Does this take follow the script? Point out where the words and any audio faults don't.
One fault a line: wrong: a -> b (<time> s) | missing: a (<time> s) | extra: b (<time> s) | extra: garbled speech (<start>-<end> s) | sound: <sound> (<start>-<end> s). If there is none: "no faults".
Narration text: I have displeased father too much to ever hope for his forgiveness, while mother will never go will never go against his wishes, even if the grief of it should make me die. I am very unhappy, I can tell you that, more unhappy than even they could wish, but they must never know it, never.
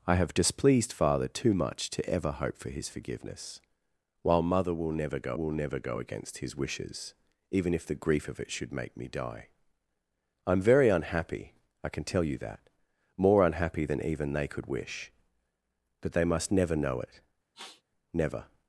sound: sniff (17.5-17.8 s)